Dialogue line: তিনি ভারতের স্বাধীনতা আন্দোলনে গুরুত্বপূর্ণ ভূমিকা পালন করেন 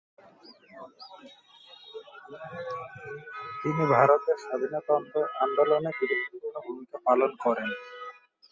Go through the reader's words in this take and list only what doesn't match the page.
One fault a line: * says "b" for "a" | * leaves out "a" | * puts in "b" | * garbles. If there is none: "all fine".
all fine